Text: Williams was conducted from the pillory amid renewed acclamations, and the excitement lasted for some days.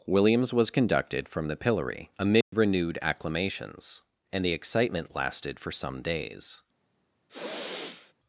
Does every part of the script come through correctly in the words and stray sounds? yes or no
no